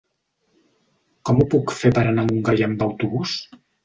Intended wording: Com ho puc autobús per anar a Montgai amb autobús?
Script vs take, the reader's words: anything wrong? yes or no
yes